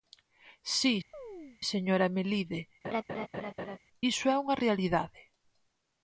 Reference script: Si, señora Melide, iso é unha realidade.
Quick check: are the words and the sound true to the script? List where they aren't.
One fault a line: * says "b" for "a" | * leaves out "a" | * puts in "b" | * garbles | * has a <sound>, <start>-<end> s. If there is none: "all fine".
* has a chirp, 1.1-1.6 s
* has a laugh, 2.8-3.8 s